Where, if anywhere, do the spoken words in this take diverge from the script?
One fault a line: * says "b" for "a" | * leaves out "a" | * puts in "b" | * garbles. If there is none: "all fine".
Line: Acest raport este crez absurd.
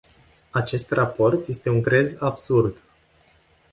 * puts in "un"